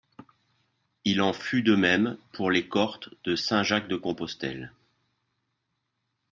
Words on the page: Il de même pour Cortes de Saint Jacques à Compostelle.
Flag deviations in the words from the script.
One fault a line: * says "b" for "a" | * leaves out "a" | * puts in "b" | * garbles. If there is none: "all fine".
* puts in "en fut"
* puts in "les"
* says "de" for "à"